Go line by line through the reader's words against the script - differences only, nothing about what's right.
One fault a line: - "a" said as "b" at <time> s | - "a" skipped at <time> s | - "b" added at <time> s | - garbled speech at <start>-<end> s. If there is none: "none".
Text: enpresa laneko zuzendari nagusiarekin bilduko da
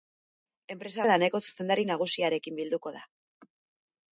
none